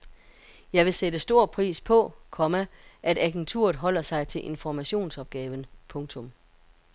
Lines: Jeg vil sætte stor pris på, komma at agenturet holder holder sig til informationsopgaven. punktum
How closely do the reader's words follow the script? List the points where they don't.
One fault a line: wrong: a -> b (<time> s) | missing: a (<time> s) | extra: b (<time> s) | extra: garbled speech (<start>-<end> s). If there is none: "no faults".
missing: holder (4.0 s)